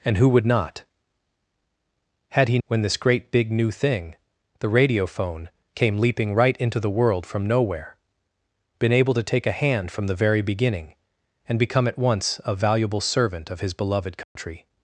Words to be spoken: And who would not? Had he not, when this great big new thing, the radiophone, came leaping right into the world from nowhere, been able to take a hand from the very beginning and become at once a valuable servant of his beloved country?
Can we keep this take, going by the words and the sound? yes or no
no